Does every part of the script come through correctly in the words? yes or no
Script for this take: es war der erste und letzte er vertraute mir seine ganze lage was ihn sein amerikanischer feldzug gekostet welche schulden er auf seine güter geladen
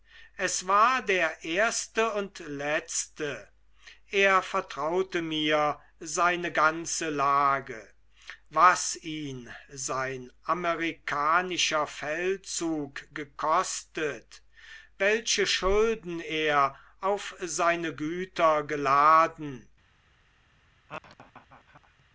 yes